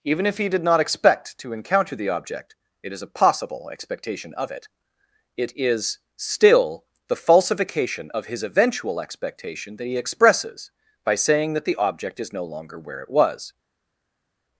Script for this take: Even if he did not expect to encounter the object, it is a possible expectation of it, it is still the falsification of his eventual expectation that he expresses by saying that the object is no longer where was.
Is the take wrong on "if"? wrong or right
right